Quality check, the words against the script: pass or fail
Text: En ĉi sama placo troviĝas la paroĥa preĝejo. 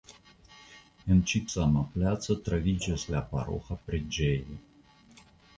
pass